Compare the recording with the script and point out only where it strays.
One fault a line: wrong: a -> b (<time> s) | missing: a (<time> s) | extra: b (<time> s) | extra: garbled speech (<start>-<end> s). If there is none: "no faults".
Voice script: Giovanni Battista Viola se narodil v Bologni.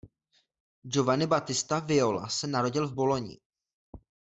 no faults